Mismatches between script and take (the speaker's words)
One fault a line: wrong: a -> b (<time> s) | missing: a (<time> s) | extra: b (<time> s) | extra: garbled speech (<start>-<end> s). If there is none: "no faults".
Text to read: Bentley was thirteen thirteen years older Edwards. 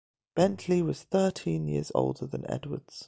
missing: thirteen (1.7 s)
extra: than (2.3 s)